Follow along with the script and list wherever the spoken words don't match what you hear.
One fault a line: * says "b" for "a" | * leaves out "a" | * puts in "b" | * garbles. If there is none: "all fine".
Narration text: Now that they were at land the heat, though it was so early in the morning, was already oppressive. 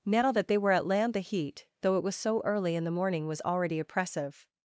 all fine